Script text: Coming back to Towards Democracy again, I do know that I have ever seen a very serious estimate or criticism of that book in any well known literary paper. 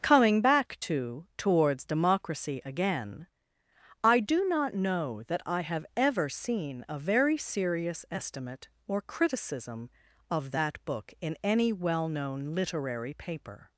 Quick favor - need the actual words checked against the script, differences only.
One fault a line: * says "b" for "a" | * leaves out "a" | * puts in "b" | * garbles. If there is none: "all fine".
* puts in "not"